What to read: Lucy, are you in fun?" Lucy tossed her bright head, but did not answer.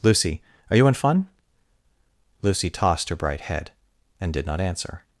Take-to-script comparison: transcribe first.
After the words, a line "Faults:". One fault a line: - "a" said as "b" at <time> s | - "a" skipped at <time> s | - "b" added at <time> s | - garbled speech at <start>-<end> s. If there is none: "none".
Lucy, are you in fun?" Lucy tossed her bright head, and did not answer.
Faults:
- "but" said as "and" at 4.2 s